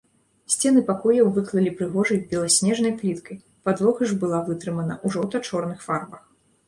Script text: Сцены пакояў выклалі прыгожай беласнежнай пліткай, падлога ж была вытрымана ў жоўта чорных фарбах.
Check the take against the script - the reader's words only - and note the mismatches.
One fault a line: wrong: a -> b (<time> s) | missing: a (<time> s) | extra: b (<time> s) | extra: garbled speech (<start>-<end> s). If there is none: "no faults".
no faults